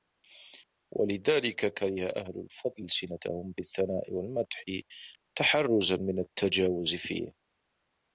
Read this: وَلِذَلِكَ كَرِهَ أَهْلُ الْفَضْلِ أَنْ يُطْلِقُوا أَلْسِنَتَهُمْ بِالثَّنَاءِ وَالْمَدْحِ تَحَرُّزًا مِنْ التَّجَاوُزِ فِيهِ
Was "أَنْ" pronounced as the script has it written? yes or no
no